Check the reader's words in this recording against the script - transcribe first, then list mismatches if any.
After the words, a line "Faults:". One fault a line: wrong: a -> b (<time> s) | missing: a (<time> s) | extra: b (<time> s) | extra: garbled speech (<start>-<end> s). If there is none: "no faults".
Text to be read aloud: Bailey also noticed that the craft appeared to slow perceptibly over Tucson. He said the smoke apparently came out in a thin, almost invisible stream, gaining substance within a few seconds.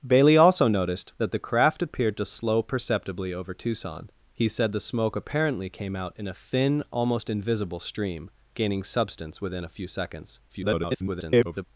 Bailey also noticed that the craft appeared to slow perceptibly over Tucson. He said the smoke apparently came out in a thin, almost invisible stream, gaining substance within a few seconds. [garbled]
Faults:
extra: garbled speech (10.5-11.6 s)